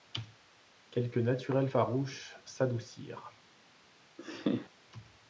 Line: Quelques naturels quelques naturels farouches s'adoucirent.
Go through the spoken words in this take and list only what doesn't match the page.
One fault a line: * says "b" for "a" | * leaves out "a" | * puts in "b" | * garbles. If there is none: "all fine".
* leaves out "quelques naturels"